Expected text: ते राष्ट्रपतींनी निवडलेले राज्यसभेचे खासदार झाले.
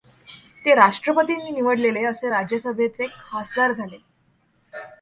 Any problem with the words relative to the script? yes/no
yes